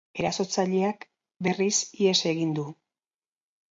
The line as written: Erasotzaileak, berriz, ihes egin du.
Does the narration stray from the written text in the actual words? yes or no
no